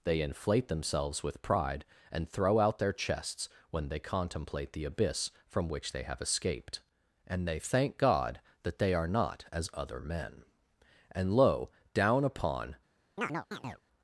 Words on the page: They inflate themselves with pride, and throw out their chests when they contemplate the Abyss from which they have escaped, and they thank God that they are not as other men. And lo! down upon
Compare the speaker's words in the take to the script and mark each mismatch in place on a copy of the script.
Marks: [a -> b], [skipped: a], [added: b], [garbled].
They inflate themselves with pride, and throw out their chests when they contemplate the Abyss from which they have escaped, and they thank God that they are not as other men. And lo! down upon